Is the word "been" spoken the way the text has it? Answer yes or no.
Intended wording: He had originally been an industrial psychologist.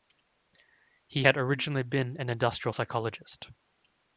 yes